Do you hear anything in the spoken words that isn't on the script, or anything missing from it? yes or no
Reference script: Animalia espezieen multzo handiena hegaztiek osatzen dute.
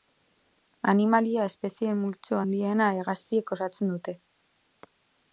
no